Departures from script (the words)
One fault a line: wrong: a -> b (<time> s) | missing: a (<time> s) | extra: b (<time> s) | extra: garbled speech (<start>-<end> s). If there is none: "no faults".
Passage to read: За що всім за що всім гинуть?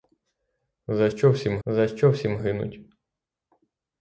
no faults